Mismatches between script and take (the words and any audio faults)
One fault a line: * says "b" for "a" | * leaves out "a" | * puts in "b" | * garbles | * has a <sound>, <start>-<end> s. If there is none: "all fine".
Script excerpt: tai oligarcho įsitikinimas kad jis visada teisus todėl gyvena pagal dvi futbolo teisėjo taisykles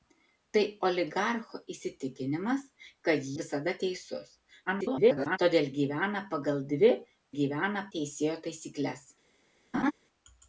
* leaves out "jis"
* garbles
* says "gyvena" for "futbolo"
* has a laugh, 9.7-9.9 s